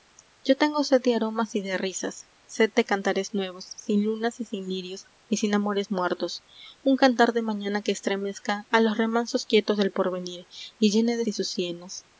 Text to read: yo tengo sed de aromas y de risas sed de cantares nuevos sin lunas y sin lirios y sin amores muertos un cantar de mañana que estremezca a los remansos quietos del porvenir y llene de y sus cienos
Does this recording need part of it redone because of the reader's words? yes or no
no